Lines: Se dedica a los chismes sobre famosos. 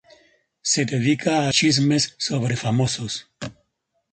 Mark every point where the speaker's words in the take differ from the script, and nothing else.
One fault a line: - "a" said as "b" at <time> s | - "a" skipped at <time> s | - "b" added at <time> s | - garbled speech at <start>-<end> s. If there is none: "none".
- "los" skipped at 1.5 s